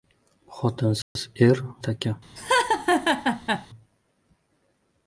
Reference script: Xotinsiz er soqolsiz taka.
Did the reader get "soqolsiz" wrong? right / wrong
wrong